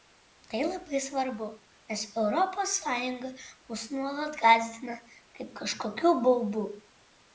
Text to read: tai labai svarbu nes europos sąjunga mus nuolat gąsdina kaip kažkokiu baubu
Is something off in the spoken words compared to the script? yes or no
no